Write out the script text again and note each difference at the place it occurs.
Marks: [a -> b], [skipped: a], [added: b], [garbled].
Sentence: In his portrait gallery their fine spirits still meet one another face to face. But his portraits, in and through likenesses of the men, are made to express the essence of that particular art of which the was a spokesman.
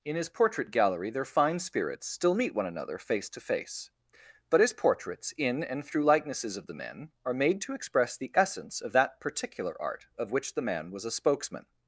In his portrait gallery their fine spirits still meet one another face to face. But his portraits, in and through likenesses of the men, are made to express the essence of that particular art of which the [added: man] was a spokesman.